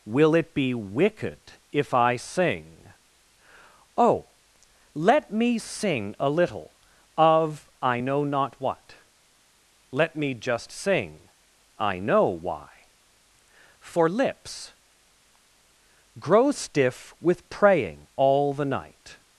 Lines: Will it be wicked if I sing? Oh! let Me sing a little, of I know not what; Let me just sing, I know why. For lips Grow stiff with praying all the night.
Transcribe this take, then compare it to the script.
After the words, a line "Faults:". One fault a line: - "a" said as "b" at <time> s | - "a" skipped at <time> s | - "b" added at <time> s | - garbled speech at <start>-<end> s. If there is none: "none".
Will it be wicked if I sing? Oh! let Me sing a little, of I know not what; Let me just sing, I know why. For lips Grow stiff with praying all the night.
Faults:
none